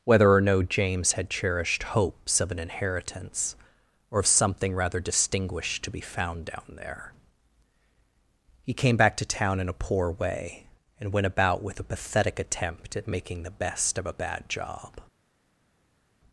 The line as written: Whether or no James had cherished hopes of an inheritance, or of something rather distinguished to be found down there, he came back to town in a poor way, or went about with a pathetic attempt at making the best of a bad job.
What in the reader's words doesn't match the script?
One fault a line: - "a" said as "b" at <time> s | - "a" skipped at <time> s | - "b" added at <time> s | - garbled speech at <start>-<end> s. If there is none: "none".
- "or" said as "and" at 11.0 s